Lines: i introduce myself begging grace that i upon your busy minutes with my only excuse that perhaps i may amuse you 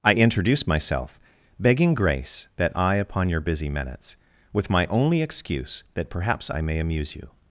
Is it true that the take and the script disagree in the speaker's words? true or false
false